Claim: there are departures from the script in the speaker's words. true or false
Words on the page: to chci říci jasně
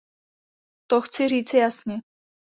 false